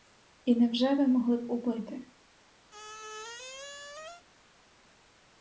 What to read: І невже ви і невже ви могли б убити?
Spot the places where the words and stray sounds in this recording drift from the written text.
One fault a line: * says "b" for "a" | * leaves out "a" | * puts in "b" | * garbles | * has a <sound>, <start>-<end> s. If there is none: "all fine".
* leaves out "і невже ви"
* has a squeak, 2.7-4.3 s